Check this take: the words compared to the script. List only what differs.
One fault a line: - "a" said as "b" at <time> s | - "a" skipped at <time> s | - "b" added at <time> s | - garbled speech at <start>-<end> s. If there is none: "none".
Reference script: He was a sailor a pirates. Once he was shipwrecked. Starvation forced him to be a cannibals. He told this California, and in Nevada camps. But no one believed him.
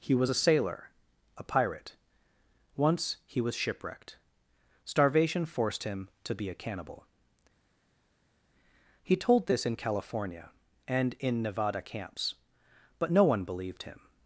- "pirates" said as "pirate" at 1.4 s
- "cannibals" said as "cannibal" at 6.5 s
- "in" added at 9.6 s